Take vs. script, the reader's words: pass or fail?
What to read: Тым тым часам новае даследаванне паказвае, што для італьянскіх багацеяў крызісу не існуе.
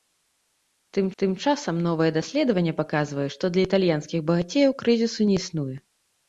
pass